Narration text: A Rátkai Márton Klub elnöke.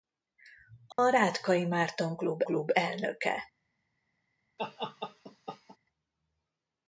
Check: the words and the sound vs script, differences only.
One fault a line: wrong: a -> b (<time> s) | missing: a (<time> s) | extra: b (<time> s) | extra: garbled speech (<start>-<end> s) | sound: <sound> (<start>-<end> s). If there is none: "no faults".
sound: dropout (0.9-1.0 s)
extra: Klub (2.4 s)
sound: laugh (4.6-5.8 s)